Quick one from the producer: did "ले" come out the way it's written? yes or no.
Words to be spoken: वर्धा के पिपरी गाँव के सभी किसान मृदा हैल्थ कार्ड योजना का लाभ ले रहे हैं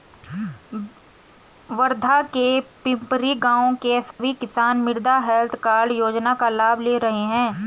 yes